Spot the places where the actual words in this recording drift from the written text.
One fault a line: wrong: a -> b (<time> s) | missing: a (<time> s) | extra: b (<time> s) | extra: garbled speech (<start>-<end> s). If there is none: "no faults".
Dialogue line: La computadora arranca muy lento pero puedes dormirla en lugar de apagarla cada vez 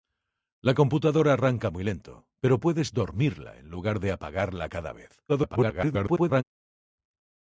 extra: garbled speech (5.3-6.4 s)